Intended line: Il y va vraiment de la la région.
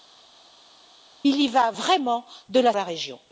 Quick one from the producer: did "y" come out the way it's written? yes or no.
yes